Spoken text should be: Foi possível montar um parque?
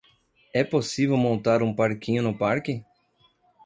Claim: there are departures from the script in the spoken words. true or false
true